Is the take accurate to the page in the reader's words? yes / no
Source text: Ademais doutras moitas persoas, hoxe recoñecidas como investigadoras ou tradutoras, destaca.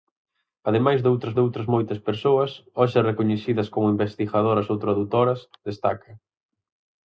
no